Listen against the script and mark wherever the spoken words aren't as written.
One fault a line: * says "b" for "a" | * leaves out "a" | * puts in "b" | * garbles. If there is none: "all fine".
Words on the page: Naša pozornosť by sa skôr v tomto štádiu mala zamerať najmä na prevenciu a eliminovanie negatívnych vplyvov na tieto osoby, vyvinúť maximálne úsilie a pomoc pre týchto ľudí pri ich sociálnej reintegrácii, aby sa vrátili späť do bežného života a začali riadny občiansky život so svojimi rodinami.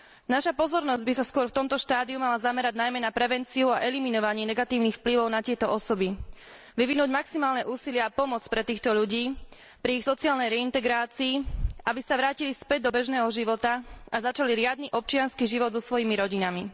all fine